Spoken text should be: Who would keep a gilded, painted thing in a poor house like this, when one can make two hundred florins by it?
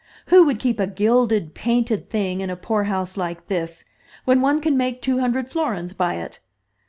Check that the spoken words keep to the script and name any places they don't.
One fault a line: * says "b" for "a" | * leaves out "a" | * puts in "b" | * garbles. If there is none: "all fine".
all fine